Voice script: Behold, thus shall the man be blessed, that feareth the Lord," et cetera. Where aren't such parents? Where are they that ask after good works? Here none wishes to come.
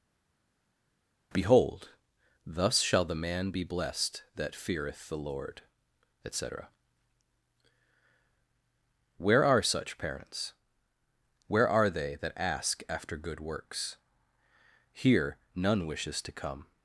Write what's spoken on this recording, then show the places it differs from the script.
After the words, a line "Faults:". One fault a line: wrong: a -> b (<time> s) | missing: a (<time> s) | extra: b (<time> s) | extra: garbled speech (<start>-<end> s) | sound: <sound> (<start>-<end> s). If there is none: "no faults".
Behold, thus shall the man be blessed, that feareth the Lord," et cetera. Where are such parents? Where are they that ask after good works? Here none wishes to come.
Faults:
wrong: aren't -> are (9.4 s)